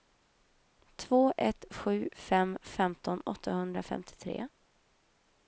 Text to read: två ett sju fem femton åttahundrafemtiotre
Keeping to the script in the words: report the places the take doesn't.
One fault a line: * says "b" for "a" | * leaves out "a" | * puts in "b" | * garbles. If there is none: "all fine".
all fine